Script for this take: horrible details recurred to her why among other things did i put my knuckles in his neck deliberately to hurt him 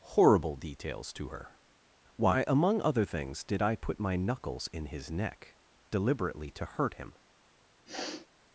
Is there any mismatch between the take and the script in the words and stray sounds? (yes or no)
yes